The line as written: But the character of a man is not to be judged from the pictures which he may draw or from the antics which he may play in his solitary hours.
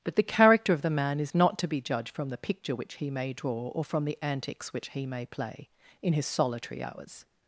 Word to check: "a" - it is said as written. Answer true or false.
false